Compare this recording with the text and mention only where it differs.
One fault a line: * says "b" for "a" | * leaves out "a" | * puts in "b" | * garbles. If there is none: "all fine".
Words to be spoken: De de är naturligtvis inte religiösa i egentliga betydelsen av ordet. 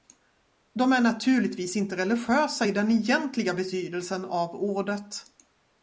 * leaves out "de"
* puts in "den"